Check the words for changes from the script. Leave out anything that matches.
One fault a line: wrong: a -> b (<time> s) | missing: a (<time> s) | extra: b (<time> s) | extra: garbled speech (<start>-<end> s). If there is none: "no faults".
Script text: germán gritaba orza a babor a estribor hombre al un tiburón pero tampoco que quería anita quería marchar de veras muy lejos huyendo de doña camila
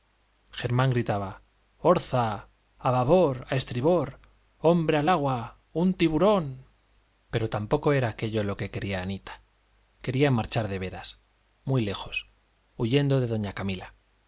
extra: agua (5.1 s)
extra: era aquello lo (7.9 s)